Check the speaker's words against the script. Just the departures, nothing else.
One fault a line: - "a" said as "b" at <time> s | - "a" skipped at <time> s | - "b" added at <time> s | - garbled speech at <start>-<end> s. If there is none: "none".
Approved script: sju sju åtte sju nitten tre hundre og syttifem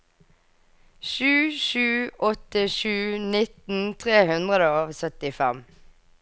none